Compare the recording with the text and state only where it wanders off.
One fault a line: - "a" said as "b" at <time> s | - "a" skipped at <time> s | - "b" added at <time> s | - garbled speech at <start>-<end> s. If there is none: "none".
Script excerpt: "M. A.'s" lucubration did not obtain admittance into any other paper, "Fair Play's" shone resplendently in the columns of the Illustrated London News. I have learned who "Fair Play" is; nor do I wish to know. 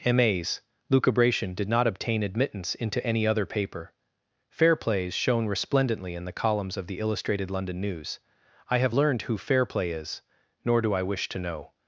none